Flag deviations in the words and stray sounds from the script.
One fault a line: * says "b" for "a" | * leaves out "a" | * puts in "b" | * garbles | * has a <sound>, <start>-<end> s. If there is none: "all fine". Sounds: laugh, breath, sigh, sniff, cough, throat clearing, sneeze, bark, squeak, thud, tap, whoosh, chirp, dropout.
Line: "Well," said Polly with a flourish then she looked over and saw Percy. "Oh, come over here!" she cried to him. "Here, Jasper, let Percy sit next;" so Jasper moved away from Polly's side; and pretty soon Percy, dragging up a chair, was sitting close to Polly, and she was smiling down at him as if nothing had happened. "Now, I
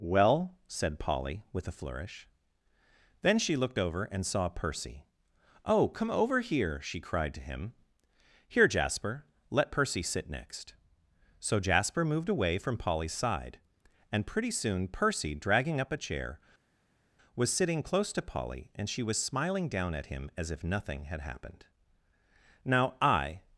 all fine